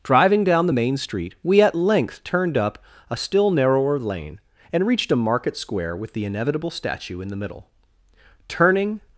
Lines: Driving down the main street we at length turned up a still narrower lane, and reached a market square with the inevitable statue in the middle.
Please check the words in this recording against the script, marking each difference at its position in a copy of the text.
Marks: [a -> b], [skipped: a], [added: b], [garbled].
Driving down the main street we at length turned up a still narrower lane, and reached a market square with the inevitable statue in the middle. [added: Turning]